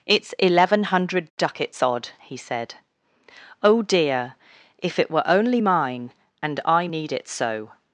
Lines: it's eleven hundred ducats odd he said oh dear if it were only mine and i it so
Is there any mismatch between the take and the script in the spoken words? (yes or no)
yes